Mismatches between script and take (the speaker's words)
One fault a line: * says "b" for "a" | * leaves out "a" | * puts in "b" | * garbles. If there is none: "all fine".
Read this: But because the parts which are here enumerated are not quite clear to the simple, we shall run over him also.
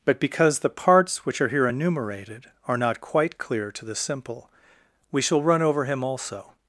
all fine